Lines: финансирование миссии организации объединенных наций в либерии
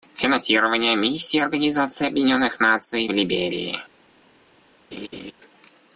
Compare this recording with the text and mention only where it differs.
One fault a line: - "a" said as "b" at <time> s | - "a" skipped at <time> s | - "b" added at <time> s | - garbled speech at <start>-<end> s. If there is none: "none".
none